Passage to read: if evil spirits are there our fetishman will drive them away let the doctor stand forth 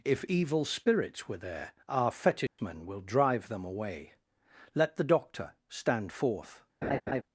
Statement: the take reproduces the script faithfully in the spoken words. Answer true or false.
false